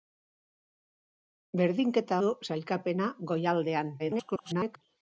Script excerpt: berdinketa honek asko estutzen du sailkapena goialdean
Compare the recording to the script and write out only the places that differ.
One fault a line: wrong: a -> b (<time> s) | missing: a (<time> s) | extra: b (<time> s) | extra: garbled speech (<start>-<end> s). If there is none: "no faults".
missing: honek asko estutzen (2.2 s)
extra: garbled speech (4.0-4.8 s)